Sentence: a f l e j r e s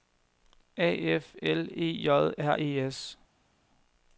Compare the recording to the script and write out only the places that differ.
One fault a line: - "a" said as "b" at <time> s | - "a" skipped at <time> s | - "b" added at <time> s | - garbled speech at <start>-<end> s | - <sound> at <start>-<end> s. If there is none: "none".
none